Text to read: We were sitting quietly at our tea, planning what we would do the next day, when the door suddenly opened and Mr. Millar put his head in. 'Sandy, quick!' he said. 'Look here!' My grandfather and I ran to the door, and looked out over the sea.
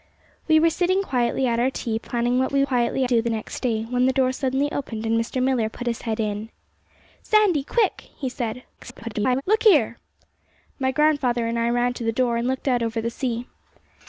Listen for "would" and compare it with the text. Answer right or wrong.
wrong